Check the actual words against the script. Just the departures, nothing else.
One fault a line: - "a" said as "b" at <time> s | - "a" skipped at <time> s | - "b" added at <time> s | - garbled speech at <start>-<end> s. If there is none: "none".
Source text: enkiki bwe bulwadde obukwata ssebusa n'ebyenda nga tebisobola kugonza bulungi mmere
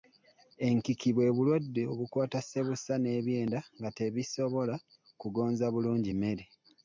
none